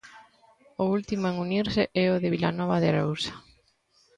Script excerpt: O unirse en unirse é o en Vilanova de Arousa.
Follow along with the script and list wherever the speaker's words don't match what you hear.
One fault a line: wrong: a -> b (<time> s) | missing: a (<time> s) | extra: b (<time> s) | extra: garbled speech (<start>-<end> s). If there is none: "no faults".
wrong: unirse -> último (1.0 s)
wrong: en -> de (2.2 s)